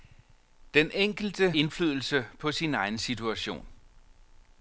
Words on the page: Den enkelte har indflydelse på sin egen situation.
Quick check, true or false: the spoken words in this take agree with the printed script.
false